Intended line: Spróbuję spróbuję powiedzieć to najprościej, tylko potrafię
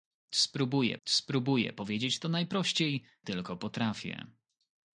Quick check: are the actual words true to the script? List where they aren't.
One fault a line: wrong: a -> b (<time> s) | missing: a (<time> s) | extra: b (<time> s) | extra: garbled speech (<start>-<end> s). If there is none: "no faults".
no faults